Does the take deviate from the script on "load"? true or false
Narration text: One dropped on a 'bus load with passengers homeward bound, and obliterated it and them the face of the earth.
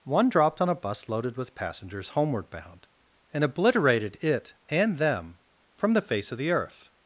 true